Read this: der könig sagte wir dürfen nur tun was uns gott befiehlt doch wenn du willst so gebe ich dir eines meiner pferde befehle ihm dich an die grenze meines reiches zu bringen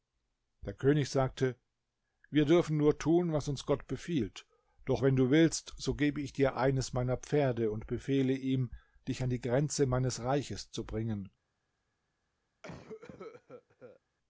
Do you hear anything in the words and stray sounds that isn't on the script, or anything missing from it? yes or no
yes